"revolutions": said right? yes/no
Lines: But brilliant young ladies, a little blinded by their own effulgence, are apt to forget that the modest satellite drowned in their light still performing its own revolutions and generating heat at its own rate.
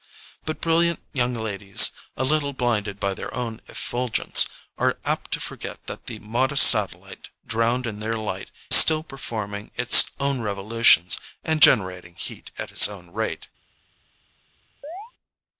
yes